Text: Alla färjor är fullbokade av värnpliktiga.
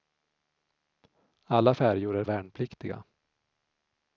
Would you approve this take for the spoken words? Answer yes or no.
no